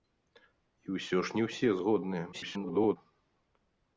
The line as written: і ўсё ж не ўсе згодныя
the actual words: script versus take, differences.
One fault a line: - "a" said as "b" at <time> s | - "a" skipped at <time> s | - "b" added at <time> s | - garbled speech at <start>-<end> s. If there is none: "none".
- garbled speech at 2.3-3.0 s